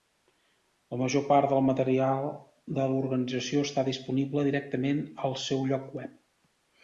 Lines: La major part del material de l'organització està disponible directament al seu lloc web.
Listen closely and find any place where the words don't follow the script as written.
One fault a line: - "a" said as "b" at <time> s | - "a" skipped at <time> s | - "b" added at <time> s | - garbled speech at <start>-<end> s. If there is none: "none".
none